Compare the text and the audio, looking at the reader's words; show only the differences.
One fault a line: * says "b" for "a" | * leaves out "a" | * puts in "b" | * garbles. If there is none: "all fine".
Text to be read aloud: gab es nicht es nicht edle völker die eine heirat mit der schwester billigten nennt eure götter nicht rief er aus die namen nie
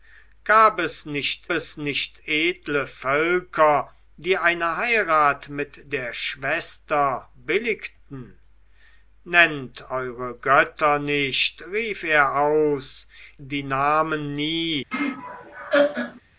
all fine